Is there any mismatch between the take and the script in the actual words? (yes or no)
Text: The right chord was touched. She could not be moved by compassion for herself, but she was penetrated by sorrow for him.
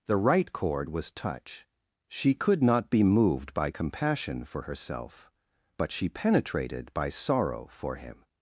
yes